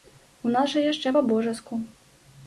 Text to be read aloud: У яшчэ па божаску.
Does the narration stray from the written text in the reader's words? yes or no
yes